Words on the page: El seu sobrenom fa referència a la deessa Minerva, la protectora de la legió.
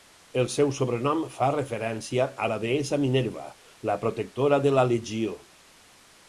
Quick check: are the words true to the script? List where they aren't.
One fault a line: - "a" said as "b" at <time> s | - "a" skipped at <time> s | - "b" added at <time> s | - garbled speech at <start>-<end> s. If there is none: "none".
none